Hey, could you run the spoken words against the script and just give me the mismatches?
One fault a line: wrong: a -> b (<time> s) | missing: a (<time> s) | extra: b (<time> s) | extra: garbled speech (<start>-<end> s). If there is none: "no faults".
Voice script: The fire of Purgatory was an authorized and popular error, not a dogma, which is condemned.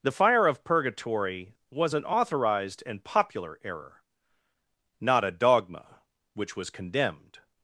wrong: is -> was (6.6 s)